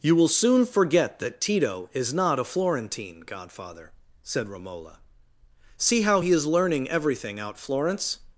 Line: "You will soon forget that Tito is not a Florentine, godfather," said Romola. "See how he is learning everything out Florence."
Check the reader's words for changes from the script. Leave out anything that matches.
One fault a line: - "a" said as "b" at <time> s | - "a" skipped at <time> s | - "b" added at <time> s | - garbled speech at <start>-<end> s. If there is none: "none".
none